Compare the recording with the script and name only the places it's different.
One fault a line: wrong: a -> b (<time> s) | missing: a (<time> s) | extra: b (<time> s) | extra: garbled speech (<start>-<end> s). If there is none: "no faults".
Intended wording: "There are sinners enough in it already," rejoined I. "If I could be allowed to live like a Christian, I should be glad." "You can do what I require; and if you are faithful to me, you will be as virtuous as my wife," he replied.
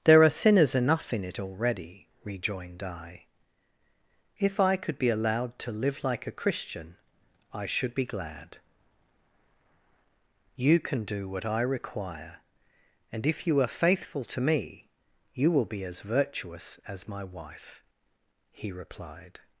no faults